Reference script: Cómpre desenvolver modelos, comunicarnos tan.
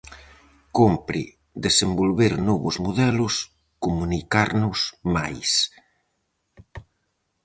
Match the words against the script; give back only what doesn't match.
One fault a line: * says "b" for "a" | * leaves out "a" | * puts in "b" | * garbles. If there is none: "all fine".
* puts in "novos"
* says "máis" for "tan"